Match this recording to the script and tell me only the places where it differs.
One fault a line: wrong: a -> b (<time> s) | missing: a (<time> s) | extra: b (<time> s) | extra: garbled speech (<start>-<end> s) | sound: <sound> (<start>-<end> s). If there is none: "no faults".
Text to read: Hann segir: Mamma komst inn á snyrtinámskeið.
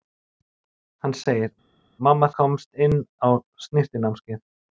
no faults